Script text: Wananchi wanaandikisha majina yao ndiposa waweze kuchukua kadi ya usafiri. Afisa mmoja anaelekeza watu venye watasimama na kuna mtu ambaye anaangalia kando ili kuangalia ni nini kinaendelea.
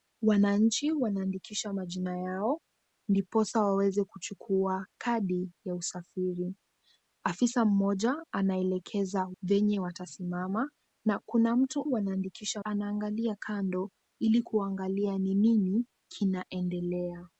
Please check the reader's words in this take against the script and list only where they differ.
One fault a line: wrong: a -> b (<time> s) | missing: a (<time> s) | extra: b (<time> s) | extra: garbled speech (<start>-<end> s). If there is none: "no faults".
missing: watu (9.3 s)
wrong: ambaye -> wanaandikisha (11.8 s)